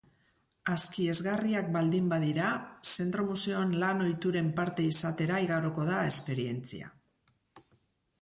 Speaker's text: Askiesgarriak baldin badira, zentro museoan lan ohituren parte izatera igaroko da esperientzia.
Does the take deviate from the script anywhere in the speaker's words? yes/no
no